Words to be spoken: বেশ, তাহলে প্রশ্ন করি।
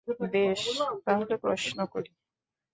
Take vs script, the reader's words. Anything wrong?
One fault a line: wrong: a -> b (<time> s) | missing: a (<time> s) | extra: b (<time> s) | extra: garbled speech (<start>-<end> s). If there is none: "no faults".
no faults